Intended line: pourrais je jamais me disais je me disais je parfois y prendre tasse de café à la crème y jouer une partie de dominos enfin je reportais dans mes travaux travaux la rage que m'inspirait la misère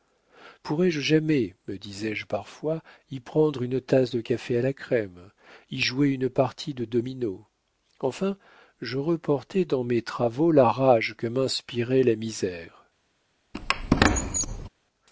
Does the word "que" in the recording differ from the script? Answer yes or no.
no